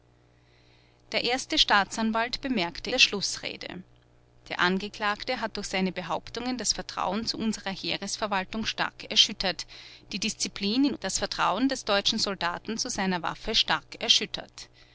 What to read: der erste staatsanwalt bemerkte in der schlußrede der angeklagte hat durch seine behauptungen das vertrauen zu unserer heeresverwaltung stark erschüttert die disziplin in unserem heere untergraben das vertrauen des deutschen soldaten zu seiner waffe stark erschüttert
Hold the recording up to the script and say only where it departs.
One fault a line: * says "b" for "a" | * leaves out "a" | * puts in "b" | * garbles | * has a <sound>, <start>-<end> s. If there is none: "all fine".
* leaves out "in"
* leaves out "unserem heere untergraben"